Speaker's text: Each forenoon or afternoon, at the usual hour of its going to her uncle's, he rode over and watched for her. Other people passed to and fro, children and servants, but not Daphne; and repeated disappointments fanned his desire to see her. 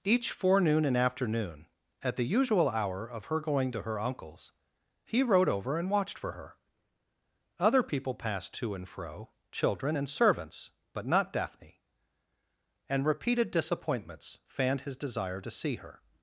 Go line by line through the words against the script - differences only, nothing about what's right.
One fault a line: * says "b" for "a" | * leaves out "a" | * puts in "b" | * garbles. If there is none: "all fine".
* says "and" for "or"
* says "her" for "its"